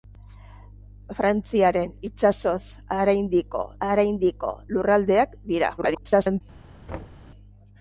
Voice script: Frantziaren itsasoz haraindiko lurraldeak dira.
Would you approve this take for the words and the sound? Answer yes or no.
no